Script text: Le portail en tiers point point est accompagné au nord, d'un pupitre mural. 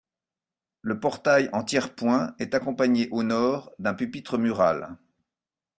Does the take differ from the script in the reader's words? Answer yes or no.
yes